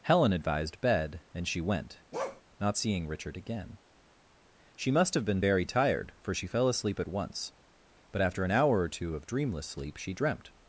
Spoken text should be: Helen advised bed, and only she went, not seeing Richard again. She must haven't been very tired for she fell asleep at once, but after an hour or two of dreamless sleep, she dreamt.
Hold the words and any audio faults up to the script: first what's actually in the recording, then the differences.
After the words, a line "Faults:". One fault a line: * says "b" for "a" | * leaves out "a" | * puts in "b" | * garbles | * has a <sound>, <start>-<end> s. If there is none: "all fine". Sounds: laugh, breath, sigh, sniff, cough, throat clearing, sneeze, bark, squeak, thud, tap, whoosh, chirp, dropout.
Helen advised bed, and she went, not seeing Richard again. She must have been very tired for she fell asleep at once, but after an hour or two of dreamless sleep, she dreamt.
Faults:
* leaves out "only"
* has a bark, 2.1-2.4 s
* says "have" for "haven't"